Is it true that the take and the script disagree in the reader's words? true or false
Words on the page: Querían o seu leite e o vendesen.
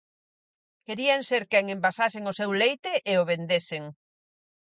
true